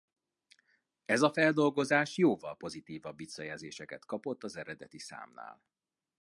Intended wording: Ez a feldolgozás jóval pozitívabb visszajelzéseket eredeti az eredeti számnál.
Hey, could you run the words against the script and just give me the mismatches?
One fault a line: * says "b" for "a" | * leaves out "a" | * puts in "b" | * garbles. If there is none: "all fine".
* says "kapott" for "eredeti"